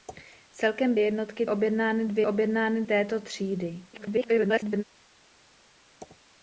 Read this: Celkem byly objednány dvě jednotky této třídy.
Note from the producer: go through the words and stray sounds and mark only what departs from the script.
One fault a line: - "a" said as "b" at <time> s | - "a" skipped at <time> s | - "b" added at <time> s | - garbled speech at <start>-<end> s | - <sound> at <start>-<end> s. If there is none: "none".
- "byly" said as "jednotky" at 1.0 s
- "jednotky" said as "objednány" at 2.2 s
- garbled speech at 3.9-4.8 s